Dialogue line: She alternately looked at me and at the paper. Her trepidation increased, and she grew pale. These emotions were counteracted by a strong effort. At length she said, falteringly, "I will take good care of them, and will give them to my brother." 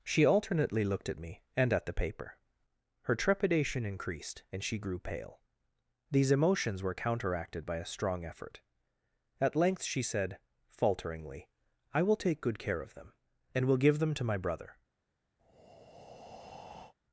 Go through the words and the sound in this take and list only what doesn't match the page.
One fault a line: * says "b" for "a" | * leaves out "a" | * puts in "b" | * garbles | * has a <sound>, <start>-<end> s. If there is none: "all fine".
* has a breath, 15.4-16.9 s